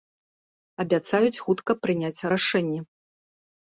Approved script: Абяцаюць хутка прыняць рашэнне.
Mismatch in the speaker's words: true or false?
false